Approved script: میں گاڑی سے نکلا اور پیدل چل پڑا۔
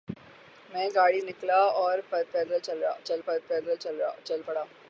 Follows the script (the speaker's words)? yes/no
no